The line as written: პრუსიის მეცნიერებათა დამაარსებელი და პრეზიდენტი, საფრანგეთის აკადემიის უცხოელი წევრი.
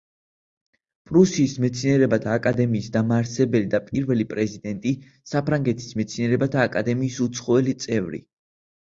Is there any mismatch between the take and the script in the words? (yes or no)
yes